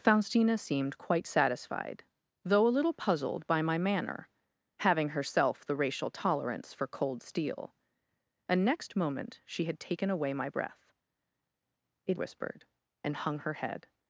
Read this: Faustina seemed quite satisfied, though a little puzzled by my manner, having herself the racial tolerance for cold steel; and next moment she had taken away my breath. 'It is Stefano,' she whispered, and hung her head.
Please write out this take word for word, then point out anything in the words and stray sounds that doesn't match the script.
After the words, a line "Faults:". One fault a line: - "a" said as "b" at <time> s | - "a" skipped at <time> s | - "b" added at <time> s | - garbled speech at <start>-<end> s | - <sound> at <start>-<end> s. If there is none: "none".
Faustina seemed quite satisfied, though a little puzzled by my manner, having herself the racial tolerance for cold steel; and next moment she had taken away my breath. 'It whispered, and hung her head.
Faults:
- "is Stefano she" skipped at 12.2 s